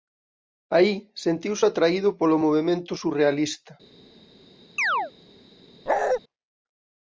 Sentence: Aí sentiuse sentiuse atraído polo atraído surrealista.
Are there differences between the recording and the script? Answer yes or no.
yes